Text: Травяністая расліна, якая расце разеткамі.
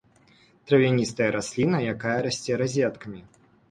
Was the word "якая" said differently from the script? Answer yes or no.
no